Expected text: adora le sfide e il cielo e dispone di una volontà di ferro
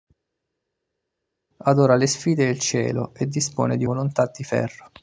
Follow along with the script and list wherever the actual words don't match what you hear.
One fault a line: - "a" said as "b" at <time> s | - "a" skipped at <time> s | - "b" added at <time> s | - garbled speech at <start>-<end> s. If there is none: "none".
- "una" skipped at 3.8 s